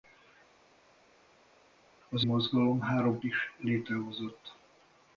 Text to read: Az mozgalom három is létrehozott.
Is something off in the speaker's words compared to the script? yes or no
no